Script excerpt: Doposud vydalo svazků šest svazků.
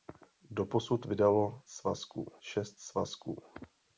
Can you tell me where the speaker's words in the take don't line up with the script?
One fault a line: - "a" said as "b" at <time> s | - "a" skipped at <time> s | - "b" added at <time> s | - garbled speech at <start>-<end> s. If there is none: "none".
none